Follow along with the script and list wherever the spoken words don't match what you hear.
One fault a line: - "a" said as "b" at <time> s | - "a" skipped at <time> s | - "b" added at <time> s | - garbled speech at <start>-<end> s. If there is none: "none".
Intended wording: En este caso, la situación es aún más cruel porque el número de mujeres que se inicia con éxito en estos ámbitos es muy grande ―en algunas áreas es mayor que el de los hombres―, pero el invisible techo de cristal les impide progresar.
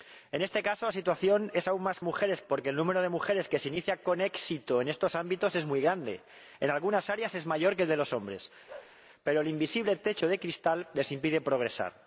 - "cruel" said as "mujeres" at 2.0 s